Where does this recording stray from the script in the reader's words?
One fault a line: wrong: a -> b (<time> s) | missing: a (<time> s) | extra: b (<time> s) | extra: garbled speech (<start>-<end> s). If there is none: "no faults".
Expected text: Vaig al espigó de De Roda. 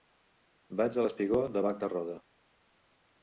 extra: Bac (1.7 s)